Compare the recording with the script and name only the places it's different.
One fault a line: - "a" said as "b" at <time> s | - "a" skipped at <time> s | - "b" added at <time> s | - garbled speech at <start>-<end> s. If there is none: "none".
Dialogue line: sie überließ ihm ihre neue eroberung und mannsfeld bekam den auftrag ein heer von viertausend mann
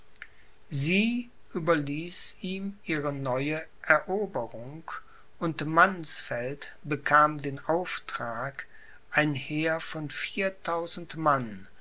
none